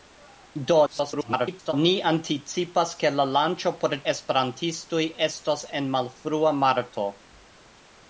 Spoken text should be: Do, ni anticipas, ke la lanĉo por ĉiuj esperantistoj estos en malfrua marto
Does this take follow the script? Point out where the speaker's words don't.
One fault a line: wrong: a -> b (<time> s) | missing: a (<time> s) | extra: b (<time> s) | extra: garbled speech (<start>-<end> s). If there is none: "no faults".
extra: garbled speech (0.9-1.7 s)
missing: ĉiuj (4.0 s)